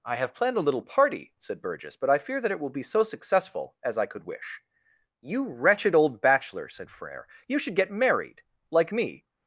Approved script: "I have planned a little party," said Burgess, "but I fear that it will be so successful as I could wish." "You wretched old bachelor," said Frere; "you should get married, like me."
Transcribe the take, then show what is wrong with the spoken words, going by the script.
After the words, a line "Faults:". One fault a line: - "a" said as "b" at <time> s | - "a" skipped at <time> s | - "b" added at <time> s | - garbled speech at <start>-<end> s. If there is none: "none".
"I have planned a little party," said Burgess, "but I fear that it will be so successful as I could wish." "You wretched old bachelor," said Frere; "you should get married, like me."
Faults:
none